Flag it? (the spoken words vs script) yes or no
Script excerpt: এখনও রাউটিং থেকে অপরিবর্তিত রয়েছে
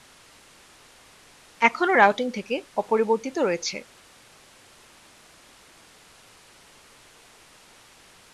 no